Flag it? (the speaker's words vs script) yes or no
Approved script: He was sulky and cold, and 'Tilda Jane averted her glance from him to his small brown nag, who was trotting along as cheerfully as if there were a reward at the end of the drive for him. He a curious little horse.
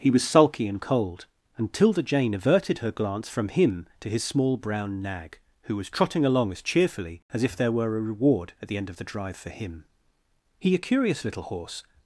no